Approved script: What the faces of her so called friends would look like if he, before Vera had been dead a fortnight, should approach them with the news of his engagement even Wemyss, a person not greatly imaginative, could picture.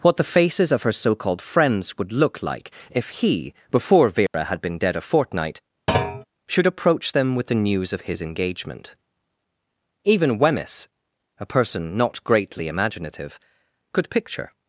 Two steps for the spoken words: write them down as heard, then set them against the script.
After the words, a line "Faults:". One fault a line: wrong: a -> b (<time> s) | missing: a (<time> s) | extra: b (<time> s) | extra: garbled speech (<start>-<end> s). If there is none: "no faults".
What the faces of her so called friends would look like if he, before Vera had been dead a fortnight, should approach them with the news of his engagement even Wemyss, a person not greatly imaginative, could picture.
Faults:
no faults